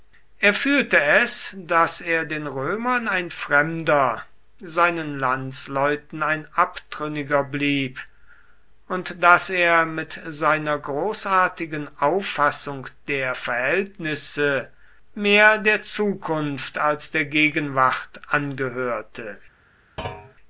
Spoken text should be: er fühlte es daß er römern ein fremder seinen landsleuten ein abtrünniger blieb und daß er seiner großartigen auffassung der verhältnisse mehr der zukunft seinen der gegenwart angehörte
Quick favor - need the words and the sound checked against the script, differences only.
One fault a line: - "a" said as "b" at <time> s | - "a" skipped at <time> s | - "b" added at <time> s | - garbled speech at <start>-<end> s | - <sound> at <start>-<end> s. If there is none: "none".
- "den" added at 2.2 s
- "mit" added at 9.9 s
- "seinen" said as "als" at 16.8 s
- thud at 20.0-20.3 s